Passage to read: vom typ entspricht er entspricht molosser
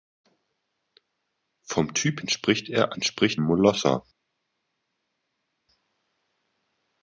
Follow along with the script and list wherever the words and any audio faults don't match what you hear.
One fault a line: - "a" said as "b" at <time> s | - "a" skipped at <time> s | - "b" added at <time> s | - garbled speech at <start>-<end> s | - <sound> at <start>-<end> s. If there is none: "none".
none